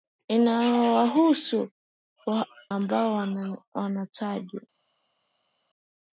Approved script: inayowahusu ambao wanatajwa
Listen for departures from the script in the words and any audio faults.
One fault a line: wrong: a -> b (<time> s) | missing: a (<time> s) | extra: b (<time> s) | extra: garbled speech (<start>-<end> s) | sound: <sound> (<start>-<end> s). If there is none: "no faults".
no faults